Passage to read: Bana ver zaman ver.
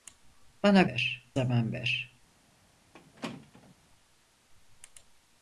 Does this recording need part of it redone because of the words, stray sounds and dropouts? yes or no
yes